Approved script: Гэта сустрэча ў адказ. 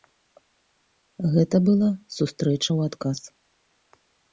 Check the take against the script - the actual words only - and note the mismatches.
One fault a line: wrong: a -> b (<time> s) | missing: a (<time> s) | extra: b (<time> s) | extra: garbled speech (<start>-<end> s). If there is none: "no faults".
extra: была (1.7 s)